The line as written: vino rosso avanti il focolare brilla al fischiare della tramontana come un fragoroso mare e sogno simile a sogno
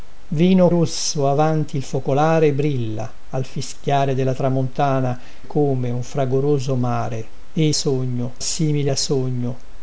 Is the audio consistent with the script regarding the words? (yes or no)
yes